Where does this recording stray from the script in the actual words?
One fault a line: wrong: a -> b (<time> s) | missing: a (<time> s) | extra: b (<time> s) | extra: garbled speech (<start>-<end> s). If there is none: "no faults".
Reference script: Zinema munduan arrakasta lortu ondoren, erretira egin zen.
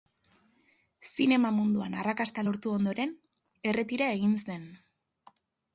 no faults